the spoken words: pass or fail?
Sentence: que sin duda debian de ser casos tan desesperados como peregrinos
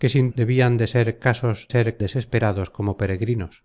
fail